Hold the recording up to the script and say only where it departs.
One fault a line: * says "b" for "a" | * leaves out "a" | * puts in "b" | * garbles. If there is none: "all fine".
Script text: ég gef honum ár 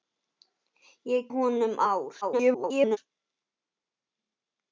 * leaves out "gef"
* garbles